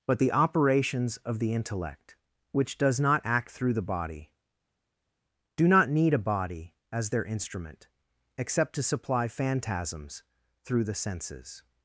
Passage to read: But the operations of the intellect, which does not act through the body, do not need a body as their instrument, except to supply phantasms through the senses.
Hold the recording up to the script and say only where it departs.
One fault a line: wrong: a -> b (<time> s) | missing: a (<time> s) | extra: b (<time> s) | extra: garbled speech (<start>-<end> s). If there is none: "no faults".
no faults